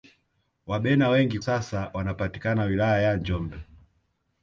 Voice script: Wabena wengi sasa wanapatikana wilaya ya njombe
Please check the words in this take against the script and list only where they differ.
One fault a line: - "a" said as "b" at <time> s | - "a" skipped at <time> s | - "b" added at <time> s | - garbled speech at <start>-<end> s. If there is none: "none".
none